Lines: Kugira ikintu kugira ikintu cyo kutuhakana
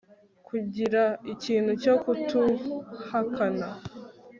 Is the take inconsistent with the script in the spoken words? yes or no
yes